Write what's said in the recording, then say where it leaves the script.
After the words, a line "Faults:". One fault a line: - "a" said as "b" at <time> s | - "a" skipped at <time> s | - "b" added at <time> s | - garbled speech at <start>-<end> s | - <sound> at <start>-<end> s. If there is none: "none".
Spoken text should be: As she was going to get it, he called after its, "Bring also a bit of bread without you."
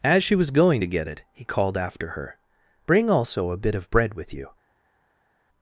As she was going to get it, he called after her, "Bring also a bit of bread with you."
Faults:
- "its" said as "her" at 2.1 s
- "without" said as "with" at 4.1 s